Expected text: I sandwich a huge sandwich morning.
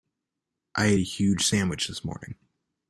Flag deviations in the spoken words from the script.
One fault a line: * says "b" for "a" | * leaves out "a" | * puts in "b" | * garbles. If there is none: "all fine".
* says "ate" for "sandwich"
* puts in "this"